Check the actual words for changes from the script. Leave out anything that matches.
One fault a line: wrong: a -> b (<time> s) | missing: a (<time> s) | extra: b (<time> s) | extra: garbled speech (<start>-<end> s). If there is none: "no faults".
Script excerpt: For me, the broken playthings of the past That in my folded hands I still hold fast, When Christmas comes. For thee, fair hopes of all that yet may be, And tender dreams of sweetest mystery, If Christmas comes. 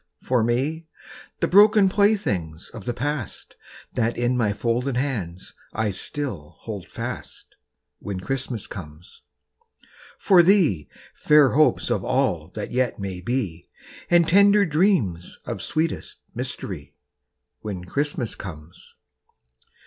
wrong: If -> When (17.6 s)